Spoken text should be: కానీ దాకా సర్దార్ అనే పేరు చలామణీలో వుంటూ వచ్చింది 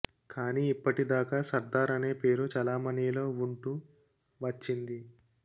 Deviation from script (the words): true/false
true